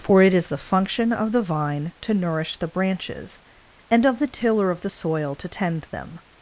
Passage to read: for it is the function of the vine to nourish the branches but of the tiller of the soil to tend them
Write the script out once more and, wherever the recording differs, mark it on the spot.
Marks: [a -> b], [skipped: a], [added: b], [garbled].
for it is the function of the vine to nourish the branches [but -> and] of the tiller of the soil to tend them